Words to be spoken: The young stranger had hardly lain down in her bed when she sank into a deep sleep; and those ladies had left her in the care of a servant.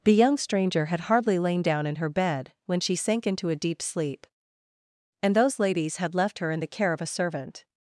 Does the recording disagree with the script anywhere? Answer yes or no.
no